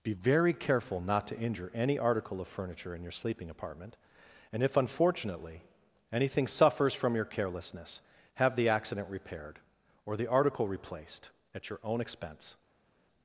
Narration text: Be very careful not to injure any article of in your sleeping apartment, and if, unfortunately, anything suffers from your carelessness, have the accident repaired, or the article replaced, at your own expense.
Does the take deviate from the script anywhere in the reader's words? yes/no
yes